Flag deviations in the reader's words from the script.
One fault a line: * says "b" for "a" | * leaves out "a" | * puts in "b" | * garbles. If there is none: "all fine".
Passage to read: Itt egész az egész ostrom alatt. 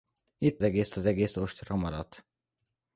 all fine